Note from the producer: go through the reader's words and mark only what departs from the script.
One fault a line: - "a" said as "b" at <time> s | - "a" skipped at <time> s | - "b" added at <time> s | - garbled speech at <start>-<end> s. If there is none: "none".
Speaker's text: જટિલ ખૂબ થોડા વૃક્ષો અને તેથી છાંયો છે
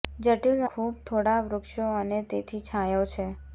none